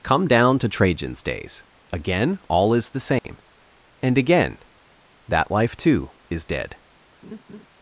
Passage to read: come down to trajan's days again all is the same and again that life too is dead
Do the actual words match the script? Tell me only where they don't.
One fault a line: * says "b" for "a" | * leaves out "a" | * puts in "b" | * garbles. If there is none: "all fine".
all fine